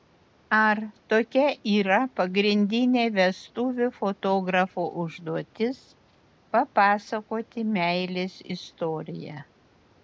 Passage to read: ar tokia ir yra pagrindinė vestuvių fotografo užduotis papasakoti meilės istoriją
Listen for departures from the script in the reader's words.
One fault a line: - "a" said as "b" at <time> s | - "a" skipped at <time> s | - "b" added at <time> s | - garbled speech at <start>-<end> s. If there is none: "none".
- "ir" skipped at 1.5 s